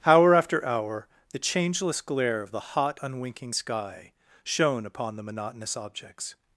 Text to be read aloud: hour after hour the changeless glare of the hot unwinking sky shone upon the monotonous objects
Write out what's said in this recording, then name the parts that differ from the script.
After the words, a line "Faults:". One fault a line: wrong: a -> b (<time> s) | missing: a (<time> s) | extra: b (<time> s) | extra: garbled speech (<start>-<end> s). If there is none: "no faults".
hour after hour the changeless glare of the hot unwinking sky shone upon the monotonous objects
Faults:
no faults